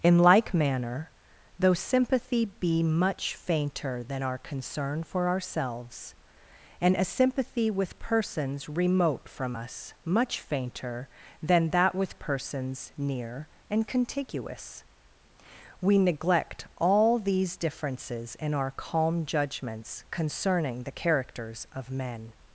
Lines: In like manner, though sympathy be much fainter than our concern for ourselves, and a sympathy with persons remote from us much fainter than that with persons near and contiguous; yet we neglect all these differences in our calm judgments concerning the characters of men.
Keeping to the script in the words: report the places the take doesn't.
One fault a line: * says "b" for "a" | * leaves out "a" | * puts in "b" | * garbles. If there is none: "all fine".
* leaves out "yet"